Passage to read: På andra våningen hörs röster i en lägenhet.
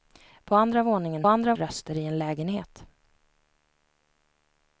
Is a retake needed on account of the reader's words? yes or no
yes